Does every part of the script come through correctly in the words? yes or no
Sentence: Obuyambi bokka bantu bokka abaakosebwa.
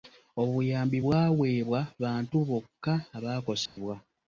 no